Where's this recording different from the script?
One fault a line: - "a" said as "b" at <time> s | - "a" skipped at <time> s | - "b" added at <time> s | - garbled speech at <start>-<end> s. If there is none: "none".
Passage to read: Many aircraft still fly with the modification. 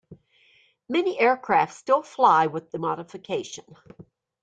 none